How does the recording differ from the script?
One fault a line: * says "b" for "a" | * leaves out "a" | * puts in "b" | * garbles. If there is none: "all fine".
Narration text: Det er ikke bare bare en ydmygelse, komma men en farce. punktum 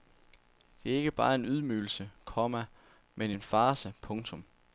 * leaves out "bare"